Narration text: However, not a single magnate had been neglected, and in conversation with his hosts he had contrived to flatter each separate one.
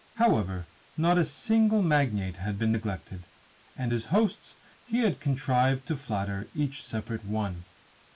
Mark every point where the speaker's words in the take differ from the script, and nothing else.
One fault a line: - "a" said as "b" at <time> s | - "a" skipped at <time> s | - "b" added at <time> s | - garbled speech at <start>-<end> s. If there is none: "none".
- "in conversation with" skipped at 3.9 s